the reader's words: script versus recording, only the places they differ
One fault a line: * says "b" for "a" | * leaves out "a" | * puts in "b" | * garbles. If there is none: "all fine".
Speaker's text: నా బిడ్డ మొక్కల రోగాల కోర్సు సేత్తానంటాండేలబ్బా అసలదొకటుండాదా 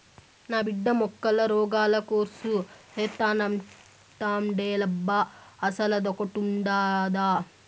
all fine